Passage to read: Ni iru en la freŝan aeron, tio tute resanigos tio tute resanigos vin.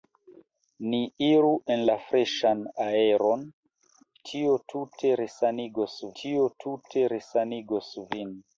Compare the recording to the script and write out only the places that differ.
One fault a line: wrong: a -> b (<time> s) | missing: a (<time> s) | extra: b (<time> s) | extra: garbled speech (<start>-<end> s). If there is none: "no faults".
no faults